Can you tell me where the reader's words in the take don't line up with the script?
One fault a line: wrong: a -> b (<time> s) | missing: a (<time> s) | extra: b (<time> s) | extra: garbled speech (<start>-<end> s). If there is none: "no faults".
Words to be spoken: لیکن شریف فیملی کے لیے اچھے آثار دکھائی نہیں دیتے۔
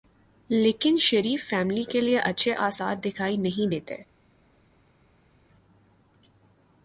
no faults